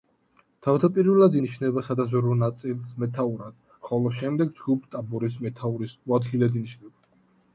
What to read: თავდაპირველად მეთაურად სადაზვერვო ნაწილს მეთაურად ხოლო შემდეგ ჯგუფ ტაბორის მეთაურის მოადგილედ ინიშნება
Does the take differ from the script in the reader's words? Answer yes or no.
yes